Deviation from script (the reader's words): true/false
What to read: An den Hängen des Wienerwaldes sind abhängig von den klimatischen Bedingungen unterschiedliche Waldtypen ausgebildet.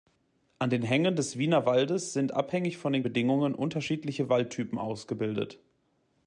true